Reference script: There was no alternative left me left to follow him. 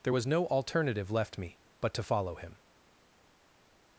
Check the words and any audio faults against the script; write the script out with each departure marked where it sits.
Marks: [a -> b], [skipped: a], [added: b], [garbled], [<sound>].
There was no alternative left me [left -> but] to follow him.